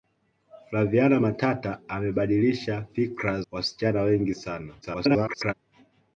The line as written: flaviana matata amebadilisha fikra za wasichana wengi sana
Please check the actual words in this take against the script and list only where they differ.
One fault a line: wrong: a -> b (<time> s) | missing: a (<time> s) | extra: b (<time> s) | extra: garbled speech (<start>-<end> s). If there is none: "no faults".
missing: za (3.4 s)
extra: garbled speech (4.8-5.5 s)